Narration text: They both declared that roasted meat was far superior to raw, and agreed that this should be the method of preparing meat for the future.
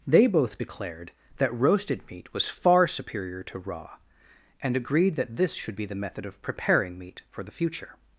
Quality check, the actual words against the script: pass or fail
pass